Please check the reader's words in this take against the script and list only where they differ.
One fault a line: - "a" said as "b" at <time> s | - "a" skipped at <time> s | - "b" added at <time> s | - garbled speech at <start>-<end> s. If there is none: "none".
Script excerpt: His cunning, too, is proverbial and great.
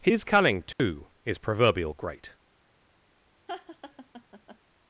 - "and" skipped at 1.9 s